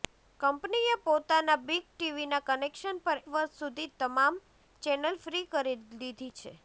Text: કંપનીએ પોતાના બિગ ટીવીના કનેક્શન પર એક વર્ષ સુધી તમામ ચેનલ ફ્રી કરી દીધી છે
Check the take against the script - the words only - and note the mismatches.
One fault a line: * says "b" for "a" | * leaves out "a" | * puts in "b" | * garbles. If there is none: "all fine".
* leaves out "એક"